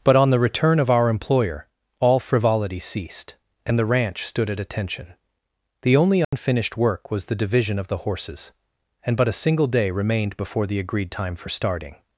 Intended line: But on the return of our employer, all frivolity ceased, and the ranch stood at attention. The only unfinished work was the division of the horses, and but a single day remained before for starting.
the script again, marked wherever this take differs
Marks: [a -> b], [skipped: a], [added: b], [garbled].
But on the return of our employer, all frivolity ceased, and the ranch stood at attention. The only unfinished work was the division of the horses, and but a single day remained before [added: the agreed time] for starting.